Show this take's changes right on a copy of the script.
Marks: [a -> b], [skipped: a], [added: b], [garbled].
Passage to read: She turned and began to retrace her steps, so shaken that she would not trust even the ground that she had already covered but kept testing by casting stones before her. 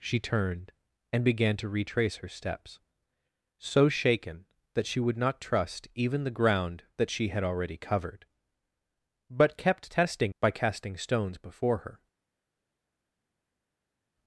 She turned and began to retrace her steps, so shaken that she would not trust even the ground that she had already covered but kept testing by casting stones before her.